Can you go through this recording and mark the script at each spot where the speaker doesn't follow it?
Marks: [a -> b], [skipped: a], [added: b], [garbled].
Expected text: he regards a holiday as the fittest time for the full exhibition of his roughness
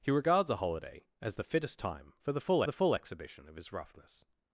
he regards a holiday as the fittest time for the full [added: the full] exhibition of his roughness